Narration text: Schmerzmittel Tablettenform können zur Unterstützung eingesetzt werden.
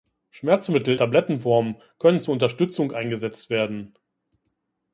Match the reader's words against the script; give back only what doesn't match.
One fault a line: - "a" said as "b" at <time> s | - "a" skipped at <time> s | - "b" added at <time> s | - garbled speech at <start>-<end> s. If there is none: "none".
none